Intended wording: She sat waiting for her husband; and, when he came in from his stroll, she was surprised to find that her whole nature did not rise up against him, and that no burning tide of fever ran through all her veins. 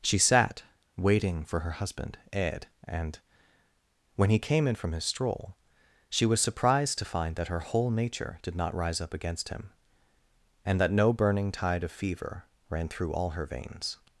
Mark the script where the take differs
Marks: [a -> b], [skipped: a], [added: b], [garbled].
She sat waiting for her husband; [added: ed] and, when he came in from his stroll, she was surprised to find that her whole nature did not rise up against him, and that no burning tide of fever ran through all her veins.